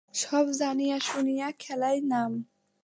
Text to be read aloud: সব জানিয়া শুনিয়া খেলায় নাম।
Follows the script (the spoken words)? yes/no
yes